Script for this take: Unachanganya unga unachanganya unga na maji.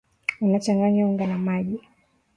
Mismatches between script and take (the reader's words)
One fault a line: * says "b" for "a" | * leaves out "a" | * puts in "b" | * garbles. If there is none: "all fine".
* leaves out "unachanganya unga"